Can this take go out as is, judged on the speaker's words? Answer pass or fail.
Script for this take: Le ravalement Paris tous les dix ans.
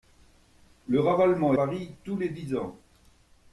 pass